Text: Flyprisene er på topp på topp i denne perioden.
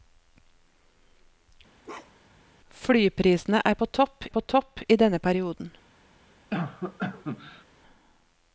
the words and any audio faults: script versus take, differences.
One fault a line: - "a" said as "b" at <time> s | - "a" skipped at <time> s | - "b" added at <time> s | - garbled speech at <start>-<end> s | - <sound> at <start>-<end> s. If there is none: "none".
- bark at 1.8-2.4 s
- cough at 6.5-7.6 s